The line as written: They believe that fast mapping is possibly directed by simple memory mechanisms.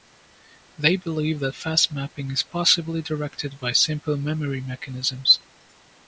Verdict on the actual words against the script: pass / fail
pass